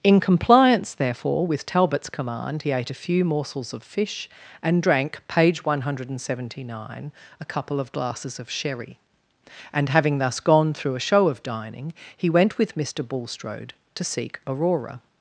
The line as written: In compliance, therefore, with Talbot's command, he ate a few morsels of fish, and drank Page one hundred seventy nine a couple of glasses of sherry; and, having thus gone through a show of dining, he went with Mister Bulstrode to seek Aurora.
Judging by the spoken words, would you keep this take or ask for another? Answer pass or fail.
pass